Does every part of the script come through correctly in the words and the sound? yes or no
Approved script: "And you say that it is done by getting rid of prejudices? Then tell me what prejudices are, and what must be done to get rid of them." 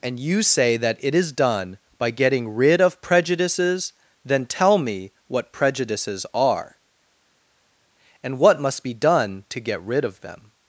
yes